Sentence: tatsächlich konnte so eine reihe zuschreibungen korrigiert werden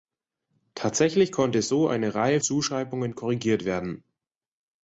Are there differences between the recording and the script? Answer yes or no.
no